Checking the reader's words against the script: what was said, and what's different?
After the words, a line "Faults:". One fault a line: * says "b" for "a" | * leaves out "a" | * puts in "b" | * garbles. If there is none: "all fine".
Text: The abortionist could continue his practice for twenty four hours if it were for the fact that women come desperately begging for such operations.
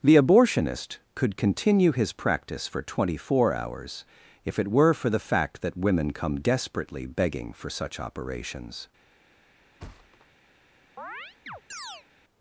The abortionist could continue his practice for twenty four hours if it were for the fact that women come desperately begging for such operations.
Faults:
all fine